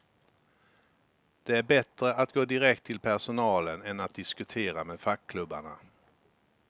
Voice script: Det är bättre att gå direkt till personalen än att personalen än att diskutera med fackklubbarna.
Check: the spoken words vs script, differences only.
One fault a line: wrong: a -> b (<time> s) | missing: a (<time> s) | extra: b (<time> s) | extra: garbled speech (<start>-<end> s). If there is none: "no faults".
missing: personalen än att (4.1 s)